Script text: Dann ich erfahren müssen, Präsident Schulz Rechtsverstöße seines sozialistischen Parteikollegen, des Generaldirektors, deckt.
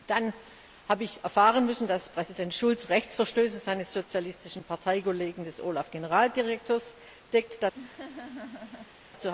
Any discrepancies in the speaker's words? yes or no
yes